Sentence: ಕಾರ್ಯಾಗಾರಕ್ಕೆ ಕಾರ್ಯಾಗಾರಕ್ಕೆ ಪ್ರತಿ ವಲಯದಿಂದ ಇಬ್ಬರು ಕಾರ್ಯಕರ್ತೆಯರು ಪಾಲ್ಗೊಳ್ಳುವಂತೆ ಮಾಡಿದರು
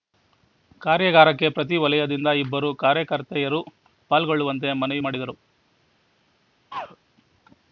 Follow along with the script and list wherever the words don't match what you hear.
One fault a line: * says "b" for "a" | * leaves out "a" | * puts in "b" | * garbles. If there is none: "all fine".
* leaves out "ಕಾರ್ಯಾಗಾರಕ್ಕೆ"
* puts in "ಮನವಿ"